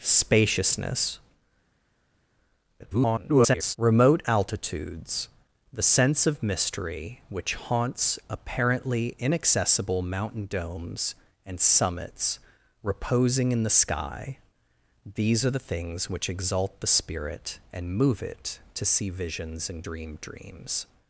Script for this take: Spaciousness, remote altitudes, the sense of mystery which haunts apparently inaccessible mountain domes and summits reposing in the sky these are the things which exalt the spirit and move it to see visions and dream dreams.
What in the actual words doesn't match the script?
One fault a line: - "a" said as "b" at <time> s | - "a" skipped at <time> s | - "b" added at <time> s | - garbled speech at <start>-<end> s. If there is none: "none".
- garbled speech at 2.8-3.8 s